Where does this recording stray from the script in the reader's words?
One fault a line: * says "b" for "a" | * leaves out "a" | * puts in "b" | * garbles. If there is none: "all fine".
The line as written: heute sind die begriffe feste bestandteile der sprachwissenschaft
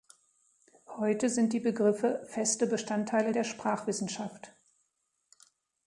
all fine